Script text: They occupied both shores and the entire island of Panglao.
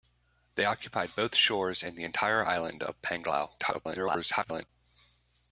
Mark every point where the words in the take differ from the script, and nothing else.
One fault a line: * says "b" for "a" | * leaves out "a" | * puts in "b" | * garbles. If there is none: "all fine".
* garbles